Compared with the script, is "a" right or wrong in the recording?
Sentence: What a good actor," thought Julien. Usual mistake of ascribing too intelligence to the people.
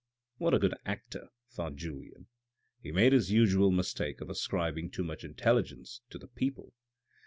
right